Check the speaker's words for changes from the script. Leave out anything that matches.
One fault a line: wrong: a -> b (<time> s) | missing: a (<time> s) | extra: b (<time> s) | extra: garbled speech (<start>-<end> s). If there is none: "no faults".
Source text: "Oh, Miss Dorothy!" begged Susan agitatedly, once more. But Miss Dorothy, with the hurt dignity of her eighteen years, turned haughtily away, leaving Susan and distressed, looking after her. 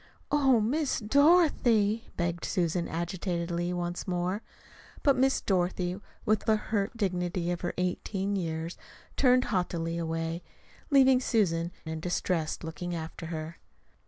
no faults